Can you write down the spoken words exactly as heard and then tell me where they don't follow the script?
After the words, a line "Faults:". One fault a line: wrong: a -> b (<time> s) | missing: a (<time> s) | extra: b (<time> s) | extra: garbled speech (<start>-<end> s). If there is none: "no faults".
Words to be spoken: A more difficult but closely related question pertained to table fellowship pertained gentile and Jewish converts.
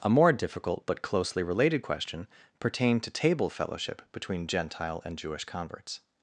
A more difficult but closely related question pertained to table fellowship between gentile and Jewish converts.
Faults:
wrong: pertained -> between (4.1 s)